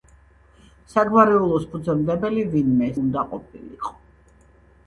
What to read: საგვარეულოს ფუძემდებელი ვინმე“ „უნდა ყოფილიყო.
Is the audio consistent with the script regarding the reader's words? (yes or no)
yes